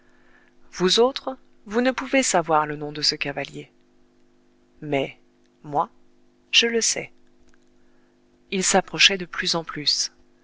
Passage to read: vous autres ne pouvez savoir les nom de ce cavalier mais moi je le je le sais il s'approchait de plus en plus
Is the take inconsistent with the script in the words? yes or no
yes